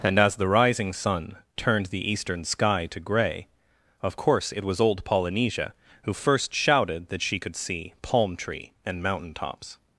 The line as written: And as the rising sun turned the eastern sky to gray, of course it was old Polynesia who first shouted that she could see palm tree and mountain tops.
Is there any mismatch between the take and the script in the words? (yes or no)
no